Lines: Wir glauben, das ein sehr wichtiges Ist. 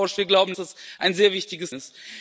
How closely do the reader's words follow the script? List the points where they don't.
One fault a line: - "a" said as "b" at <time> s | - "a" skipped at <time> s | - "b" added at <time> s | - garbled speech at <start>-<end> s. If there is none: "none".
none